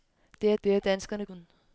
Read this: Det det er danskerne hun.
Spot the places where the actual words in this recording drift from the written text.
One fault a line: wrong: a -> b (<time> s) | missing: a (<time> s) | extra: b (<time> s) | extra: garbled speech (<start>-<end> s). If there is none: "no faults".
no faults